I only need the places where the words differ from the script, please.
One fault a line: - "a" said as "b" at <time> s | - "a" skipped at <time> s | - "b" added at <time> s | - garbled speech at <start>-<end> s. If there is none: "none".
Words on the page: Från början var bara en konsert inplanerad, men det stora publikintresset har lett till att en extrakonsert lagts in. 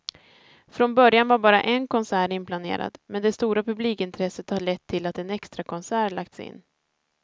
none